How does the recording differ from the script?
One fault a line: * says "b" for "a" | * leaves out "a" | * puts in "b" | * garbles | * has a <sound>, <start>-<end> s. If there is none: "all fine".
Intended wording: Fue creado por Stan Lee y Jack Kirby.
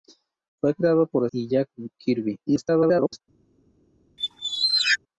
* leaves out "Stan Lee"
* garbles
* has a squeak, 4.2-5.0 s